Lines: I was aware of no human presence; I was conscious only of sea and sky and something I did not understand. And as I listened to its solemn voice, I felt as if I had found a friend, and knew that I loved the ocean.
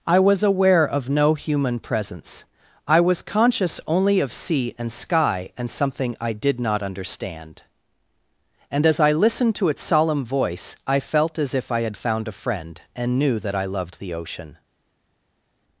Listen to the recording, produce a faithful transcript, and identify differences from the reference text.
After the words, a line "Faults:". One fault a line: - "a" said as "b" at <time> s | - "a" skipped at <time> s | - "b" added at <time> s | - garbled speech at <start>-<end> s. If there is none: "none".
I was aware of no human presence; I was conscious only of sea and sky and something I did not understand. And as I listened to its solemn voice, I felt as if I had found a friend, and knew that I loved the ocean.
Faults:
none